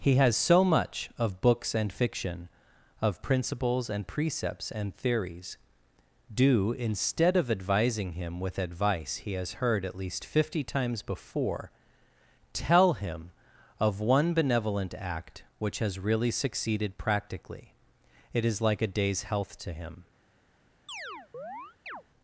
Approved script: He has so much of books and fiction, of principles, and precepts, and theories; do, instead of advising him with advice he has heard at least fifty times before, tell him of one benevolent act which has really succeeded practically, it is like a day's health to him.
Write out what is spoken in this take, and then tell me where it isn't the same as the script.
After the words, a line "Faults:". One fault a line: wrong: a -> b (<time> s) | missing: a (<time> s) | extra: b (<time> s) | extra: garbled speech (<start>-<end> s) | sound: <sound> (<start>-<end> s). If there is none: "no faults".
He has so much of books and fiction, of principles, and precepts, and theories; do, instead of advising him with advice he has heard at least fifty times before, tell him of one benevolent act which has really succeeded practically, it is like a day's health to him.
Faults:
sound: chirp (20.9-22.0 s)